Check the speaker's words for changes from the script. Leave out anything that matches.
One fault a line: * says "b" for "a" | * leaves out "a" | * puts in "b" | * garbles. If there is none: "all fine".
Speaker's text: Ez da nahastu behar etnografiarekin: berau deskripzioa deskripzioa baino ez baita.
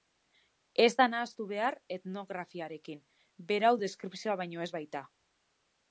* leaves out "deskripzioa"